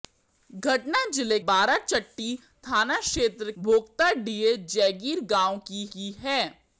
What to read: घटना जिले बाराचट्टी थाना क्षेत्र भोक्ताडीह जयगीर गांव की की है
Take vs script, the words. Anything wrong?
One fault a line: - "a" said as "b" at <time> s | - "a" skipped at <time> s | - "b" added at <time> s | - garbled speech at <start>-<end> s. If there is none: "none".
none